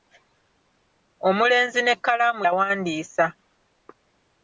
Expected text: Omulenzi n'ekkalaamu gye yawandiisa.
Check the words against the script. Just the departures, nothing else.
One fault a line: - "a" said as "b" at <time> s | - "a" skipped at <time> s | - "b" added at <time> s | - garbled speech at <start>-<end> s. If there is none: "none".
- "gye" skipped at 2.4 s